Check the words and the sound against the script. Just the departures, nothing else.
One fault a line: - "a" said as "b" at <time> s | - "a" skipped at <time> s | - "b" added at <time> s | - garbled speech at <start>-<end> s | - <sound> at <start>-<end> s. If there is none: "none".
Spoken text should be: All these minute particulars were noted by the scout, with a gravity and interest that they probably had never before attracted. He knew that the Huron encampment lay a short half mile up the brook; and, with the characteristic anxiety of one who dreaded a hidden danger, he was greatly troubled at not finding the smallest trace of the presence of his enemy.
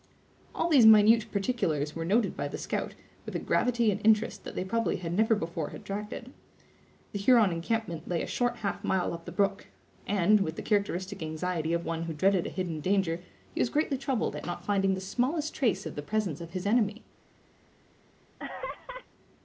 - "He knew that" skipped at 6.3 s
- laugh at 18.4-19.1 s